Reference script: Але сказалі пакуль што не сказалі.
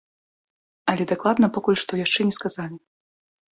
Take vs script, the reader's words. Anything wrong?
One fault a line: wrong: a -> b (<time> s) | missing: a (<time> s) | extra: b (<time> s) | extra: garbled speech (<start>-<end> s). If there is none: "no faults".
wrong: сказалі -> дакладна (1.1 s)
extra: яшчэ (2.0 s)